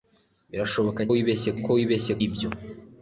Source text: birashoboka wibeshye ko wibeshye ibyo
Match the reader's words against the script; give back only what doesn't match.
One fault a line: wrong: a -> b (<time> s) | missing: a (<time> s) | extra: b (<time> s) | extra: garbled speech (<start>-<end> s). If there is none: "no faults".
no faults